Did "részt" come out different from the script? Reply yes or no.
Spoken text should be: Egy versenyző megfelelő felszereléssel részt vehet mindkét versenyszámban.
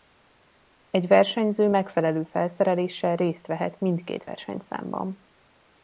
no